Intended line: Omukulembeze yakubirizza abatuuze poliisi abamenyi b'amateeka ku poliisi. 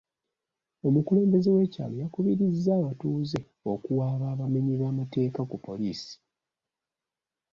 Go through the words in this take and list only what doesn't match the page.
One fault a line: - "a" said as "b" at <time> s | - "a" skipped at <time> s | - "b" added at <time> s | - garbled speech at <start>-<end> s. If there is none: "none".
- "w'ekyalo" added at 1.6 s
- "poliisi" said as "okuwaaba" at 3.7 s